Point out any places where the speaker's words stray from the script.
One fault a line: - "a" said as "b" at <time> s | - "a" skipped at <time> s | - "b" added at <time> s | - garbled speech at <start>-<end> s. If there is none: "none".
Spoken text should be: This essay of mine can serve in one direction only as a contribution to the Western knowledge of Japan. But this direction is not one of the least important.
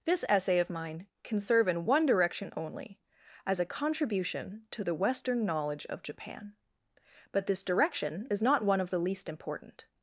none